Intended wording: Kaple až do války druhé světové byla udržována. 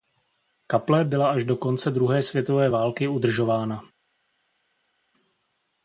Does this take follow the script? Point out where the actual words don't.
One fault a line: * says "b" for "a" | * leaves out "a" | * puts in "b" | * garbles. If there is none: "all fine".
* puts in "byla"
* says "konce" for "války"
* says "války" for "byla"